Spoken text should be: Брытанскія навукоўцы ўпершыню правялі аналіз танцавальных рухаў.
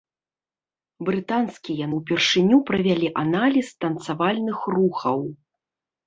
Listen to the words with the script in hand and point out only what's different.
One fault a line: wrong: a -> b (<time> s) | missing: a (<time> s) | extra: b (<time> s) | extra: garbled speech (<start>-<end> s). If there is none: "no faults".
missing: навукоўцы (1.9 s)